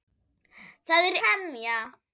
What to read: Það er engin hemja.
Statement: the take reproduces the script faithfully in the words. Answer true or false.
false